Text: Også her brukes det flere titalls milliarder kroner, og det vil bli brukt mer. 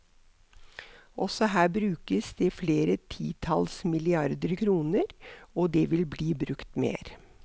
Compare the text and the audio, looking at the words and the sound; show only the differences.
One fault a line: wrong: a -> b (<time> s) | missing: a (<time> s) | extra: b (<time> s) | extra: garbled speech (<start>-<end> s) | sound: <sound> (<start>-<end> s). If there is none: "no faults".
no faults